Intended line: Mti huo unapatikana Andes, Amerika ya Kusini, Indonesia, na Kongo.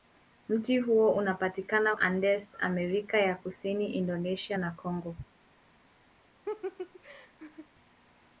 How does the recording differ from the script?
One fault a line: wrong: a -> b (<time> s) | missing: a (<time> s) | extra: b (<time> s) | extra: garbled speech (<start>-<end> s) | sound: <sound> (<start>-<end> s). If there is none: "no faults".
sound: laugh (6.5-7.7 s)